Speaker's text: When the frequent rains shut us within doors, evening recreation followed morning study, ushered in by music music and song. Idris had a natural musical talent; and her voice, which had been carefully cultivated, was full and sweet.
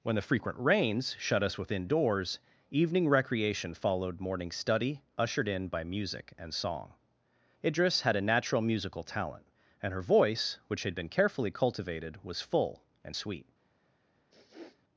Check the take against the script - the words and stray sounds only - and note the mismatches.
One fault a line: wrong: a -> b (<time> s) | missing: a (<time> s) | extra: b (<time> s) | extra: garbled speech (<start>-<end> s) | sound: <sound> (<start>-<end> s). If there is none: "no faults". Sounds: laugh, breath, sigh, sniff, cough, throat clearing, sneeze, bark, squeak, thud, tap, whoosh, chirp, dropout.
missing: music (6.3 s)
sound: sniff (14.3-14.8 s)